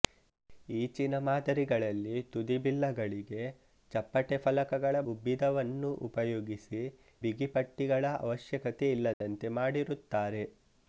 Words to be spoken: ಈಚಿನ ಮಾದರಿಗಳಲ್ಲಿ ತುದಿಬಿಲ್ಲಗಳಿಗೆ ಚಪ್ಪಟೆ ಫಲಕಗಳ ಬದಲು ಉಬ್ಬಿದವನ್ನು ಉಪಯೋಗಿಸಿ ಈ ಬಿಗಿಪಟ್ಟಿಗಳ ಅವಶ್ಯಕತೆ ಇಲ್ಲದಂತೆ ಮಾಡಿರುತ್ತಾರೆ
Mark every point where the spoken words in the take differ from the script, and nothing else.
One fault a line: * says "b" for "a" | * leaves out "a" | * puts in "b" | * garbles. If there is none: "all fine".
* leaves out "ಬದಲು"
* leaves out "ಈ"